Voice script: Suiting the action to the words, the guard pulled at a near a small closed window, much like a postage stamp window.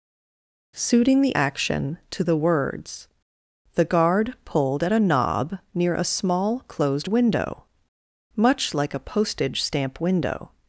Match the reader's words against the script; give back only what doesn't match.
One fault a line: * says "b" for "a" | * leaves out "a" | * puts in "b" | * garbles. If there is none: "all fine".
* puts in "knob"